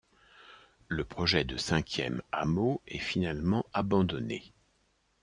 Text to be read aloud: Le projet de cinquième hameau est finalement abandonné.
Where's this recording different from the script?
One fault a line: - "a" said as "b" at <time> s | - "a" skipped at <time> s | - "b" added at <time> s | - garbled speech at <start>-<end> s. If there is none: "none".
none